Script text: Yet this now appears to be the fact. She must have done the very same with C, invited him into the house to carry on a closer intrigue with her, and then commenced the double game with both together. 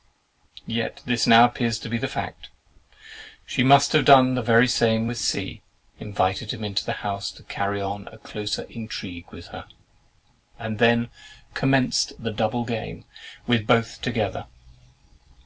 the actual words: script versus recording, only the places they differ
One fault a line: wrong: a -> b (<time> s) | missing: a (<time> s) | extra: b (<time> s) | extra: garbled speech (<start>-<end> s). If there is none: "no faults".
no faults